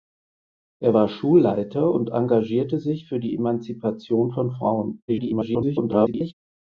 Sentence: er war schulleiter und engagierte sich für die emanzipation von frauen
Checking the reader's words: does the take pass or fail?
fail